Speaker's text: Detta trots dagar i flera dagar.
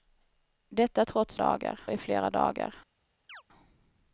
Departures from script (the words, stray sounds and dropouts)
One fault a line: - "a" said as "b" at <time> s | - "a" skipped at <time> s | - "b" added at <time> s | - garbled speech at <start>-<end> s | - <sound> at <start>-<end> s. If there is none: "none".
- chirp at 3.3-3.4 s